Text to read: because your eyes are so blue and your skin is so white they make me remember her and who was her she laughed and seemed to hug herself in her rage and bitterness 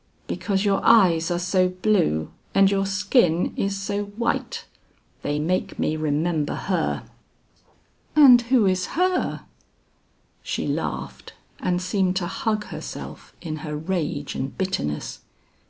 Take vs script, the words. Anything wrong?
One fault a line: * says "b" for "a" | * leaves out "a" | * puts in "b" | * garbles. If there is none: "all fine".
* says "is" for "was"